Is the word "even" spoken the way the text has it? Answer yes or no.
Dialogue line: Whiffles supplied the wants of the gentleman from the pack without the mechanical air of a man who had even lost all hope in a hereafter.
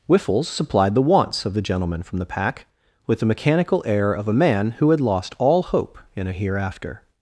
no